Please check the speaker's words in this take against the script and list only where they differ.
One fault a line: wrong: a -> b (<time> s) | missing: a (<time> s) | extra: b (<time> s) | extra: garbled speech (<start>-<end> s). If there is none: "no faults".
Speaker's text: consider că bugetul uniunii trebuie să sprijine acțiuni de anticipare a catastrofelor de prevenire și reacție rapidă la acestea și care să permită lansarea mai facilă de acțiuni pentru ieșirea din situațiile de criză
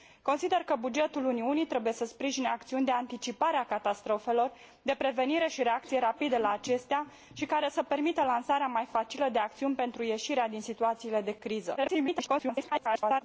extra: garbled speech (11.8-13.2 s)